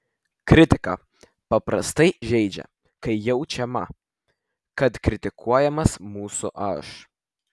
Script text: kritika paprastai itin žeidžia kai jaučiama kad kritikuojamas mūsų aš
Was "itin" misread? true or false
true